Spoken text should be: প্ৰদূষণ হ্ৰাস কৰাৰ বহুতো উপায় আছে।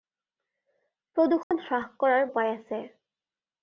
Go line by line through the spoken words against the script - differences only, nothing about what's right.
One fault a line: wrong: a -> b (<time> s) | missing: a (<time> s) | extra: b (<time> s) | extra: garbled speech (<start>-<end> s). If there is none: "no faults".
missing: বহুতো (2.2 s)